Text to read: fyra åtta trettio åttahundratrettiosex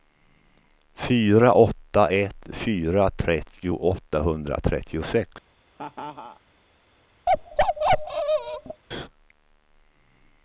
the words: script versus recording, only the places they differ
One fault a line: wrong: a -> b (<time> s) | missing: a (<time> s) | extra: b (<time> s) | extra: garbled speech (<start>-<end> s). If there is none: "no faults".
extra: ett fyra (2.1 s)